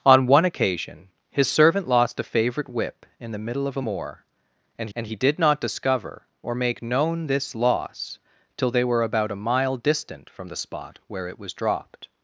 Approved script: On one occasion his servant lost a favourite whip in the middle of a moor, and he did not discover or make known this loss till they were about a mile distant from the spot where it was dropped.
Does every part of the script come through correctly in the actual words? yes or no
no